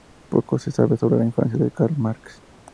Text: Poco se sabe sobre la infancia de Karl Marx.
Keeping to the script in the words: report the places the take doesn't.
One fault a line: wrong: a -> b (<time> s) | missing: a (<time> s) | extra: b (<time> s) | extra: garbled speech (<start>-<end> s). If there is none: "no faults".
no faults